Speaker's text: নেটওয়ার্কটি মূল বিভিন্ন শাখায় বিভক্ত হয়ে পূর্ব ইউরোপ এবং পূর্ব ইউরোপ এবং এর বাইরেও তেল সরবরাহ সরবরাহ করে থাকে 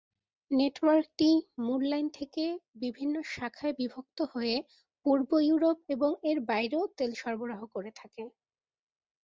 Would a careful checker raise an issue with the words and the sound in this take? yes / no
yes